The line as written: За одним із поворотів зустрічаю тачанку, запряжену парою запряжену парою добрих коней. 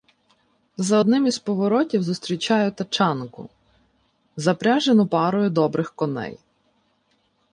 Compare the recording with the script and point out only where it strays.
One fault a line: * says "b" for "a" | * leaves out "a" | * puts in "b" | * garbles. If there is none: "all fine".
* leaves out "запряжену парою"